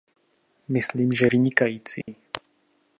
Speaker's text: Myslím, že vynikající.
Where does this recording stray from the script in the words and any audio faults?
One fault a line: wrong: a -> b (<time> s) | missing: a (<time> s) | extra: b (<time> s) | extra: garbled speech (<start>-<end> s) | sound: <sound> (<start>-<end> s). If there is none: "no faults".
sound: dropout (2.0-2.1 s)